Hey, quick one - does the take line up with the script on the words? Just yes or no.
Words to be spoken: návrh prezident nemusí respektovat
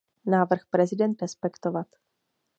no